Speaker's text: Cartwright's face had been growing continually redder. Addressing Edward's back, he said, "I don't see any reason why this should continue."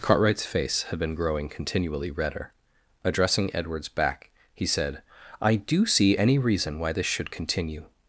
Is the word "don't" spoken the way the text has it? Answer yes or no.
no